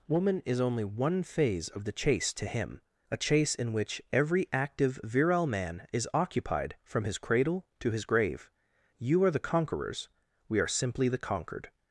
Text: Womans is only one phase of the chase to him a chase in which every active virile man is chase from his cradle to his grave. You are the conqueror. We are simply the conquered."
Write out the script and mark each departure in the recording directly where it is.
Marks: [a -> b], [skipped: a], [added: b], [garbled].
[Womans -> Woman] is only one phase of the chase to him a chase in which every active virile man is [chase -> occupied] from his cradle to his grave. You are the [conqueror. -> conquerors] We are simply the conquered."